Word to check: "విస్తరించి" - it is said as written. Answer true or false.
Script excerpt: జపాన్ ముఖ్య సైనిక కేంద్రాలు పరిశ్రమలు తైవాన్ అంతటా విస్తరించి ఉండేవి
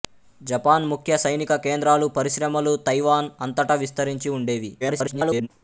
true